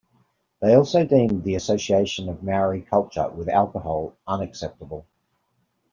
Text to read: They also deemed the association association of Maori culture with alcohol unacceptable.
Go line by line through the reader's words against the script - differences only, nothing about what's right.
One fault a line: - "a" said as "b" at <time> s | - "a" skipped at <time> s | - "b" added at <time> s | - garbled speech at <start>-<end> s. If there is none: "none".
- "association" skipped at 2.3 s